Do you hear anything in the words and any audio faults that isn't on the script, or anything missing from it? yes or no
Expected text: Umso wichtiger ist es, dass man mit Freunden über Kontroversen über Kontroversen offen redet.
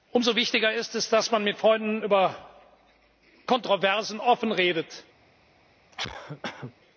yes